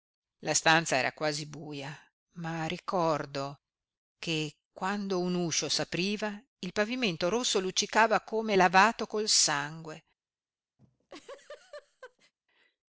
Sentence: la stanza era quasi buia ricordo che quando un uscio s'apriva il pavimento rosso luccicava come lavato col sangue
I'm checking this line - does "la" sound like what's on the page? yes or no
yes